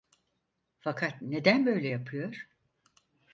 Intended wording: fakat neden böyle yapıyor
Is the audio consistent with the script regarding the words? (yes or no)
yes